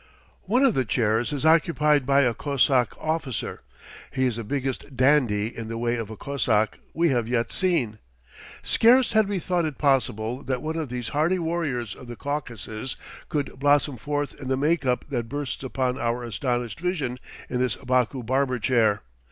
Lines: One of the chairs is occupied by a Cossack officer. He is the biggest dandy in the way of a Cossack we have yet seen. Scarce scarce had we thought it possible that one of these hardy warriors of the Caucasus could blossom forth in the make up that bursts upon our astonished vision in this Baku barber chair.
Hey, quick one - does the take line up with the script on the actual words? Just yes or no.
no